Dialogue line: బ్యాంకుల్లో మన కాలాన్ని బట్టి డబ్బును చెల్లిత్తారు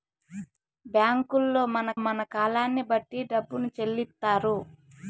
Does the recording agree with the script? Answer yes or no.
no